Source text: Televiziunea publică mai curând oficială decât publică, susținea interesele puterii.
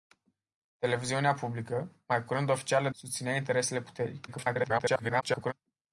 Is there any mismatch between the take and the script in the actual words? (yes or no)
yes